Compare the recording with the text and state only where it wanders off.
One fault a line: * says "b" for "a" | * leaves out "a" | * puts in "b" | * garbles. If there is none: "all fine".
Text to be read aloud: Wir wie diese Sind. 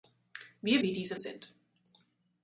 all fine